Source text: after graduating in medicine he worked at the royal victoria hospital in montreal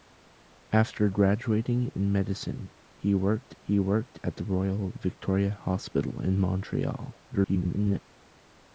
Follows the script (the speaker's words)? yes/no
no